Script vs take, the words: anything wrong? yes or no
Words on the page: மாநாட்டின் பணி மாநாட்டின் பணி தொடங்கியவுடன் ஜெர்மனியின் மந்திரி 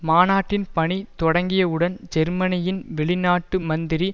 yes